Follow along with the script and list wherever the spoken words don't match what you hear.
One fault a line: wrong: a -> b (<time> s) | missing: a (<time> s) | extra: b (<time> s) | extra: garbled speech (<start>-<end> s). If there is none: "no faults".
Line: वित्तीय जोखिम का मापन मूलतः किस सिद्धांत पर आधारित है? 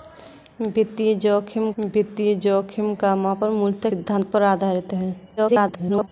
extra: वित्तीय जोखिम (1.8 s)
missing: किस (3.9 s)
extra: garbled speech (5.4-6.1 s)